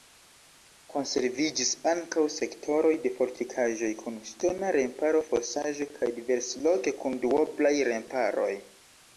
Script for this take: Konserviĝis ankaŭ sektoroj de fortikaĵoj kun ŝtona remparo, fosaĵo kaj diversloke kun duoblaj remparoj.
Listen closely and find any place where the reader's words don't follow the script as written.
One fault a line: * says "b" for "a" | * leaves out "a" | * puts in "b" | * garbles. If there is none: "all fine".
all fine